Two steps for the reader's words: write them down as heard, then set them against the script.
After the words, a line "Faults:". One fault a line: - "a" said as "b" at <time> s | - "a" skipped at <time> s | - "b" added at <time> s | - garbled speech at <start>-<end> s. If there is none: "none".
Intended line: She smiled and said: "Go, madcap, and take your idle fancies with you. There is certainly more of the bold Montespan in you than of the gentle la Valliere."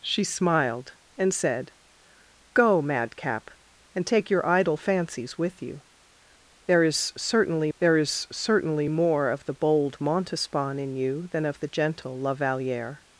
She smiled and said: "Go, madcap, and take your idle fancies with you. There is certainly there is certainly more of the bold Montespan in you than of the gentle la Valliere."
Faults:
- "there is certainly" added at 7.8 s